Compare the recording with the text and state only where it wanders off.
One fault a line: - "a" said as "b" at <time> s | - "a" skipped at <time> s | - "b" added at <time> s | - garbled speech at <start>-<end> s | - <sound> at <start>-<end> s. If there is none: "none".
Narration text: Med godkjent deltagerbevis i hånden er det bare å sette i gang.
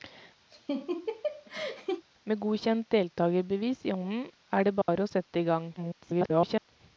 - laugh at 0.5-2.0 s
- dropout at 4.8-4.9 s
- garbled speech at 5.8-6.7 s